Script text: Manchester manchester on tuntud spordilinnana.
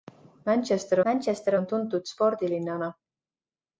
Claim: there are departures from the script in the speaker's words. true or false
false